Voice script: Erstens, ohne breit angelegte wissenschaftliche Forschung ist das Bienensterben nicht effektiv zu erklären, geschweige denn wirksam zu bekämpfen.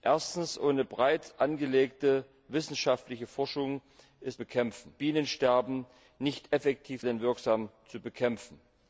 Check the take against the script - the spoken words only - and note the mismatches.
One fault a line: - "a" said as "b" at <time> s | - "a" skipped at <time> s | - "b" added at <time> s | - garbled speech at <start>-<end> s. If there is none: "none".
- "das" said as "bekämpfen" at 4.3 s
- "zu erklären geschweige" skipped at 7.0 s